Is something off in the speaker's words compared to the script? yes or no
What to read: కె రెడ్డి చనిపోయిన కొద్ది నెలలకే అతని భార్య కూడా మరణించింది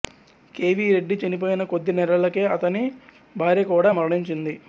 yes